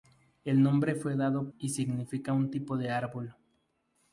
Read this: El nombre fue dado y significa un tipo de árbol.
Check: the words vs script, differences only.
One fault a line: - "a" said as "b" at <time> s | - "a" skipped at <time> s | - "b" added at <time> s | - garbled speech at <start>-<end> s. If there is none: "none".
none